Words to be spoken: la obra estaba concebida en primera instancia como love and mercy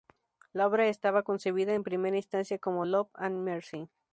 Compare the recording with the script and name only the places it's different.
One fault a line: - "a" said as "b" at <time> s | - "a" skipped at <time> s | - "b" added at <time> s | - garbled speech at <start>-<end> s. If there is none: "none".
none